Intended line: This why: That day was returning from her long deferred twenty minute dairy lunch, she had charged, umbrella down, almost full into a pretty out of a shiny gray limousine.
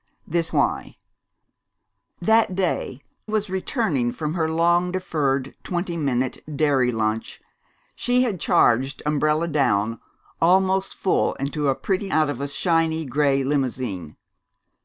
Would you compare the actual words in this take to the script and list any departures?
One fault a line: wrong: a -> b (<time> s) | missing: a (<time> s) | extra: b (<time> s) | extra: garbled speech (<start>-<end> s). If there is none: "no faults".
no faults